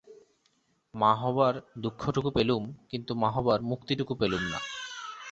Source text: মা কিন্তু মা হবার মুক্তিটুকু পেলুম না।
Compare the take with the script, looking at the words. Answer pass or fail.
fail